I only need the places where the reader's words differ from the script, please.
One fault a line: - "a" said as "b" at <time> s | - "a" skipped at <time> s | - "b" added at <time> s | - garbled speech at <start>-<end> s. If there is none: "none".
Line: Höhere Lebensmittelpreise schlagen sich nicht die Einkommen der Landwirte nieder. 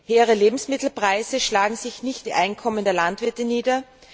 none